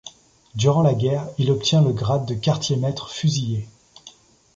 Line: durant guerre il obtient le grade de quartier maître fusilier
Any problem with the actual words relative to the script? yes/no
yes